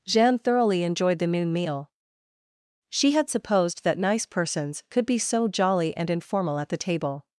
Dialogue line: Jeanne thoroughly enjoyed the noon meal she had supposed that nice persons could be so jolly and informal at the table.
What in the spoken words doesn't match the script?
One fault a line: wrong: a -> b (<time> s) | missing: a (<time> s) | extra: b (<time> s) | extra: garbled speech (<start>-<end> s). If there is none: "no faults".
no faults